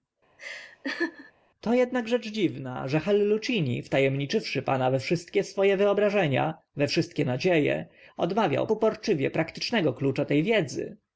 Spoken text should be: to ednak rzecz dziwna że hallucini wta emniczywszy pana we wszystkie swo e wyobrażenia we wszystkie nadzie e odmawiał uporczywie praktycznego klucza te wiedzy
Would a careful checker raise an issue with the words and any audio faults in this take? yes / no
yes